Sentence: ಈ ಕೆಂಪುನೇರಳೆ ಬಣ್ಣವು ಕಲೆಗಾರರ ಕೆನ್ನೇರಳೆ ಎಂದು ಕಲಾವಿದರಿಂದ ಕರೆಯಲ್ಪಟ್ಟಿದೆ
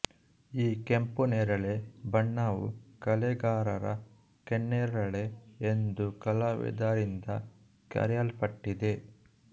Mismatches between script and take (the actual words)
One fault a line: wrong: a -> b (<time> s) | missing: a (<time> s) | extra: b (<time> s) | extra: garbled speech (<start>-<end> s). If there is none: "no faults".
no faults